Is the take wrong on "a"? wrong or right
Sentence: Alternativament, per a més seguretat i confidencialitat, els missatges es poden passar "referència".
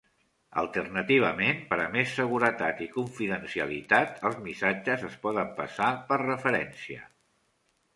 right